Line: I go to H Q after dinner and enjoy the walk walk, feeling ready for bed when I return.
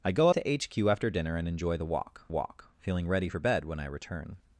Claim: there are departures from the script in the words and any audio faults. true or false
false